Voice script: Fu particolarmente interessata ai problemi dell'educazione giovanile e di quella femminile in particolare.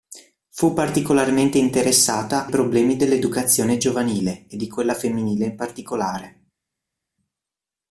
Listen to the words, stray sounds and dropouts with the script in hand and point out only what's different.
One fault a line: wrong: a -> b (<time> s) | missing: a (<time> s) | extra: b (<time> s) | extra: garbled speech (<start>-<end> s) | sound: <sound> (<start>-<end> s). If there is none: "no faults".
missing: ai (2.5 s)